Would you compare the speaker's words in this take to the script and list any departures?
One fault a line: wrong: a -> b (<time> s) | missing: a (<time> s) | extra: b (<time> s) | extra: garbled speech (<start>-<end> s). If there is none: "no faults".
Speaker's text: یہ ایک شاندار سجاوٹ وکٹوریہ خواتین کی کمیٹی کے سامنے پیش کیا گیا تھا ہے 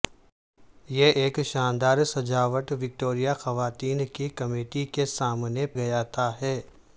missing: پیش کیا (5.7 s)